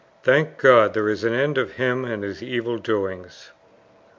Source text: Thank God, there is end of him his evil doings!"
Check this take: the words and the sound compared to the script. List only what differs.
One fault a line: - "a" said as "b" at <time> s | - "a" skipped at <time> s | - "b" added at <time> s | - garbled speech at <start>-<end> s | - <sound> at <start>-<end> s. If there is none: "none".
- "an" added at 1.2 s
- "and" added at 2.0 s